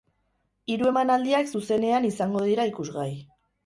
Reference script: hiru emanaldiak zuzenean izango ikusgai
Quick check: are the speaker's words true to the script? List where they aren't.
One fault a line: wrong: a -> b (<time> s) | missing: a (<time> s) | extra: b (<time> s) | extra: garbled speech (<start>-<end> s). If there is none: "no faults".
extra: dira (2.5 s)